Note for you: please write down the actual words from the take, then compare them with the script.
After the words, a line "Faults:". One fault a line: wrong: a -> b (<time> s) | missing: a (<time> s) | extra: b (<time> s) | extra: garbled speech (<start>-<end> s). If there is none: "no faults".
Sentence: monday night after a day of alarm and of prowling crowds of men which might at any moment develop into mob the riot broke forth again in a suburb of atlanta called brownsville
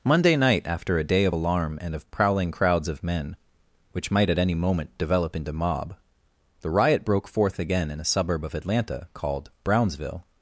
monday night after a day of alarm and of prowling crowds of men which might at any moment develop into mob the riot broke forth again in a suburb of atlanta called brownsville
Faults:
no faults